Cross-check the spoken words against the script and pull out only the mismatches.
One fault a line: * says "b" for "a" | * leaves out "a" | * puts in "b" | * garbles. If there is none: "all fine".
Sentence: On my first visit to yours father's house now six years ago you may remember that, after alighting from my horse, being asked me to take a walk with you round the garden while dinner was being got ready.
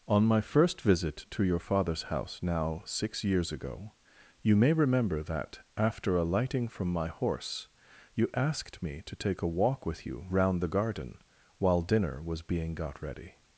* says "your" for "yours"
* says "you" for "being"